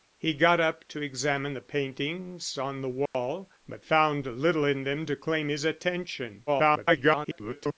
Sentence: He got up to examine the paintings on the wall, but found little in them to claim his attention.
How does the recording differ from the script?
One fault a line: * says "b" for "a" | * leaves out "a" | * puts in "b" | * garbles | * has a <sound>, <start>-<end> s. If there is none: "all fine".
* has a dropout, 3.1-3.1 s
* garbles